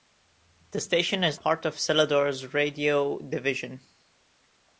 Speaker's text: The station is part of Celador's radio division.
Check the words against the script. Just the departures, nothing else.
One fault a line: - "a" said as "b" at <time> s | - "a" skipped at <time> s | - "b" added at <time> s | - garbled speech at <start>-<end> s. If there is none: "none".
none